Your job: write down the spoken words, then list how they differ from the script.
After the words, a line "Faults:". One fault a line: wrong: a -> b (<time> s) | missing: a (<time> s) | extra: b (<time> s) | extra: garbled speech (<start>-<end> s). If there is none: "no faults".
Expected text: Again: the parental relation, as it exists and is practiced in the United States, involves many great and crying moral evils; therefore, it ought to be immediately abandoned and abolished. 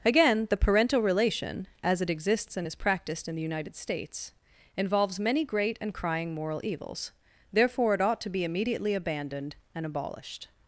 Again: the parental relation, as it exists and is practiced in the United States, involves many great and crying moral evils; therefore, it ought to be immediately abandoned and abolished.
Faults:
no faults